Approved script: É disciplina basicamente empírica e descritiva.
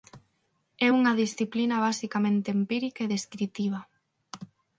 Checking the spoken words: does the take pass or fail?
fail